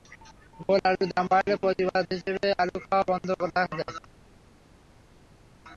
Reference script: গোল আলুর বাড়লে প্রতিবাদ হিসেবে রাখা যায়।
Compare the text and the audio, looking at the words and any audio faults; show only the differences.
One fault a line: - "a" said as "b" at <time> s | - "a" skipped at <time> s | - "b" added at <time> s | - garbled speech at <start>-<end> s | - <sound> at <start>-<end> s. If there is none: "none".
- "দাম" added at 1.1 s
- "আলু খাওয়া বন্ধ" added at 2.6 s